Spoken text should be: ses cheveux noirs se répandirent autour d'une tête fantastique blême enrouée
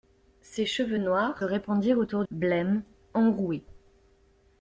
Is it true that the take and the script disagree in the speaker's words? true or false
true